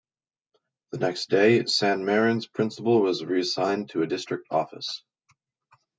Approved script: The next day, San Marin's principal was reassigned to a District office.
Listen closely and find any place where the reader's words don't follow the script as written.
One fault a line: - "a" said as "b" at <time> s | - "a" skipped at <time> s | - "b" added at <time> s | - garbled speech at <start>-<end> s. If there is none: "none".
none